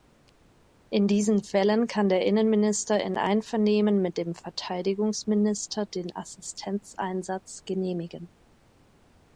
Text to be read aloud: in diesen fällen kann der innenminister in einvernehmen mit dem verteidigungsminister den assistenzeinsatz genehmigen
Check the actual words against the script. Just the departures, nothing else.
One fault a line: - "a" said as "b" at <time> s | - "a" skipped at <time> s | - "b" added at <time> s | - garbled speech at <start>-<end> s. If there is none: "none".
none